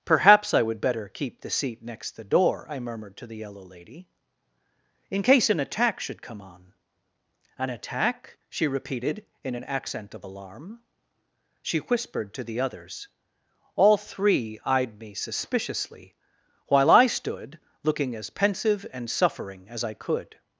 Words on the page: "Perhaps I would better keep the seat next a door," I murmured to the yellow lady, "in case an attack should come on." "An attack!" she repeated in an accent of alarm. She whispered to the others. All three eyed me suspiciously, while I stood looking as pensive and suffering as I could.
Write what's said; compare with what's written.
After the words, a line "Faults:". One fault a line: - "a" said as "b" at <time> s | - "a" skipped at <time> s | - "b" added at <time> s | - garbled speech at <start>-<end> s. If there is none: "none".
"Perhaps I would better keep the seat next the door," I murmured to the yellow lady, "in case an attack should come on." "An attack!" she repeated in an accent of alarm. She whispered to the others. All three eyed me suspiciously, while I stood looking as pensive and suffering as I could.
Faults:
- "a" said as "the" at 2.1 s